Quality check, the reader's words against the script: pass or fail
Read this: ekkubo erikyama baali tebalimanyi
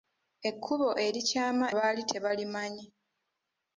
pass